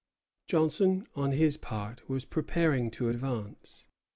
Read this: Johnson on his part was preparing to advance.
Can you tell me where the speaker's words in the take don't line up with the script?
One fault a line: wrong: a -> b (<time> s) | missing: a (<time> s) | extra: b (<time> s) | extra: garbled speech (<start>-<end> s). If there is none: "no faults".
no faults